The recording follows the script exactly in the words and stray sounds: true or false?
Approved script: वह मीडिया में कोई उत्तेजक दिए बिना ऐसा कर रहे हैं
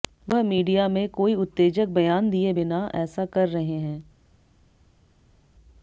false